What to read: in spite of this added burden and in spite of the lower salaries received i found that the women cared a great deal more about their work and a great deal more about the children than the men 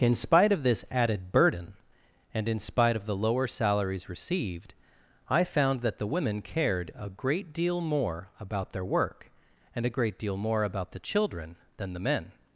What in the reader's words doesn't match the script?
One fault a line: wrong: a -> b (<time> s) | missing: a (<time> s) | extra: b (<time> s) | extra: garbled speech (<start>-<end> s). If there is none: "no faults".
no faults